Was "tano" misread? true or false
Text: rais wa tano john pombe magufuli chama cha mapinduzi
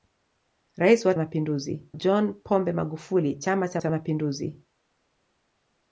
true